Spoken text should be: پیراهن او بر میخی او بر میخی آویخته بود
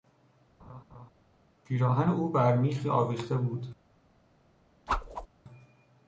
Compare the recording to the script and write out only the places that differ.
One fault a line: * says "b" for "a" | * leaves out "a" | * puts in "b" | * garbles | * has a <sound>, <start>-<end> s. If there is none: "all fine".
* has a laugh, 0.6-1.1 s
* leaves out "او بر میخی"
* has a whoosh, 4.9-5.3 s